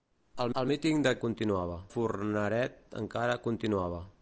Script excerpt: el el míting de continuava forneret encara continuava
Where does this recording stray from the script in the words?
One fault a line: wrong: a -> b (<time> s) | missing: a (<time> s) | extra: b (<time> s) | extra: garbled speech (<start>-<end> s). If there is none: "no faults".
no faults